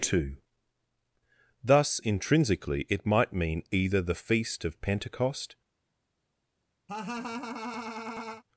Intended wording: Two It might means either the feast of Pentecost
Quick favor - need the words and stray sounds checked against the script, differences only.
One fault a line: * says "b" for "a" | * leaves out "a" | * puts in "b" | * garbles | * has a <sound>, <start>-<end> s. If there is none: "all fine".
* puts in "Thus intrinsically"
* says "mean" for "means"
* has a laugh, 6.9-8.4 s